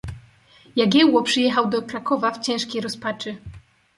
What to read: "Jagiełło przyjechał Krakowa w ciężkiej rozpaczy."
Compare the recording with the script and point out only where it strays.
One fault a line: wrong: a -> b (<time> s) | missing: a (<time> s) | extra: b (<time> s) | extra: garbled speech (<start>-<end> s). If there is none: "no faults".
extra: do (1.7 s)